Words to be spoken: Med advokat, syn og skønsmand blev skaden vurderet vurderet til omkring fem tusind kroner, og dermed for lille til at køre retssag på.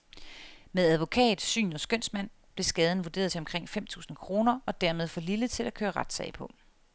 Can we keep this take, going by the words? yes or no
no